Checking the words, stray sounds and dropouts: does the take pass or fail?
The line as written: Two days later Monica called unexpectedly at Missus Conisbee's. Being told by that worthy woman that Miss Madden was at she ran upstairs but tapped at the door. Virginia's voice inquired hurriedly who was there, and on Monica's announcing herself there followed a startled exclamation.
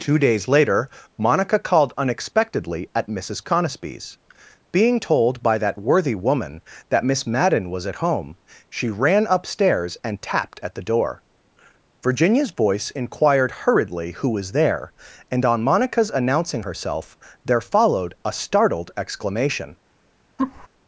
fail